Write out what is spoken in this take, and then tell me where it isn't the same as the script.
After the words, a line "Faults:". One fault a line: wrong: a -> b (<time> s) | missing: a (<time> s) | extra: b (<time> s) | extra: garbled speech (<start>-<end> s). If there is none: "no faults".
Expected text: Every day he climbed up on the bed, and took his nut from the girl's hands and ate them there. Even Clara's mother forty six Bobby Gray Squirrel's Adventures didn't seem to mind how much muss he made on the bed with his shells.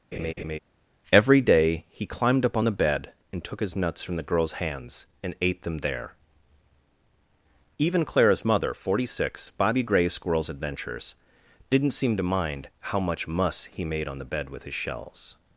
Every day he climbed up on the bed, and took his nuts from the girl's hands and ate them there. Even Clara's mother forty six Bobby Gray Squirrel's Adventures didn't seem to mind how much muss he made on the bed with his shells.
Faults:
wrong: nut -> nuts (3.8 s)